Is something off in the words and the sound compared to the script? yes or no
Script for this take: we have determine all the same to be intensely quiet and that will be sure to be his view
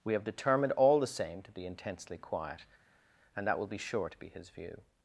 yes